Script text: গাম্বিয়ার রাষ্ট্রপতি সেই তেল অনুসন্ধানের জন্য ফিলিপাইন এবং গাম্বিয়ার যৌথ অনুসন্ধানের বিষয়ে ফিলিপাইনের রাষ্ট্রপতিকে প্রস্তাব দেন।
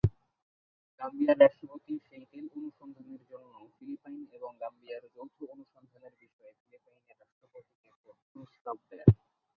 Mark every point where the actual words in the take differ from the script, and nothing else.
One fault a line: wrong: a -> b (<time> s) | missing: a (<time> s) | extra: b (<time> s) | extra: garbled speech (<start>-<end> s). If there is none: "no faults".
no faults